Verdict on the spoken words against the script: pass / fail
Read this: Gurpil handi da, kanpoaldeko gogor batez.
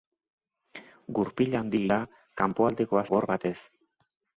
pass